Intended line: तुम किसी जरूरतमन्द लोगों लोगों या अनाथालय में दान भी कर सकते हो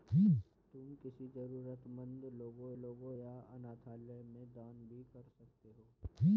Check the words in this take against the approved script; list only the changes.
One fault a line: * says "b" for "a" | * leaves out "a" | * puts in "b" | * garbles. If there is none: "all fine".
all fine